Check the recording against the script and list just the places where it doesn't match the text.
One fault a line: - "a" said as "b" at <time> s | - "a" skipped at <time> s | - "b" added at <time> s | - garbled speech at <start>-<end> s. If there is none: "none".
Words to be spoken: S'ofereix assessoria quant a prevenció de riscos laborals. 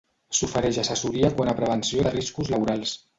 none